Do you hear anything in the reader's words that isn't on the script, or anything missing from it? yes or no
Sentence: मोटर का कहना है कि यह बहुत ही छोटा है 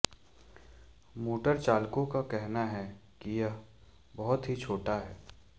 yes